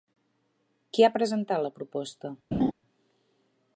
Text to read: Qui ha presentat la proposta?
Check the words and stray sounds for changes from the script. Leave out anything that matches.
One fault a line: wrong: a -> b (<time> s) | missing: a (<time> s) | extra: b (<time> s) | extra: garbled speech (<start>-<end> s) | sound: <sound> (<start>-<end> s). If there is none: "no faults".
sound: laugh (2.5-2.7 s)